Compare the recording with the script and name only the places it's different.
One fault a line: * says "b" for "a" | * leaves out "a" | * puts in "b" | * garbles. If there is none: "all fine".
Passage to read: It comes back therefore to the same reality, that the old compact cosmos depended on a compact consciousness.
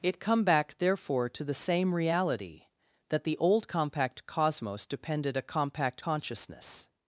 * says "come" for "comes"
* leaves out "on"